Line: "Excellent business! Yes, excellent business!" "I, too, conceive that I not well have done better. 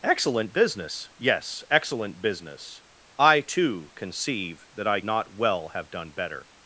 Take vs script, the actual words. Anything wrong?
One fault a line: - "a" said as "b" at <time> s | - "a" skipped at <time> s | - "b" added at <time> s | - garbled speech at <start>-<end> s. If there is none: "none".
none